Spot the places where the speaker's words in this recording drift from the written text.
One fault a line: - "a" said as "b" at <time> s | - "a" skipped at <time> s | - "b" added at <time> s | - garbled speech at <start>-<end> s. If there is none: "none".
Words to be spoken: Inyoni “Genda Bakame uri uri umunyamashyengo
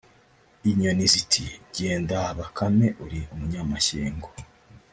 - "ziti" added at 1.1 s
- "uri" skipped at 3.2 s